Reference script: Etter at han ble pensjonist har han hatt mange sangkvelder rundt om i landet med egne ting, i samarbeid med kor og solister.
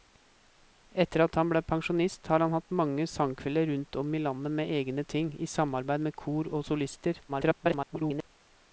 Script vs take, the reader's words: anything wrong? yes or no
yes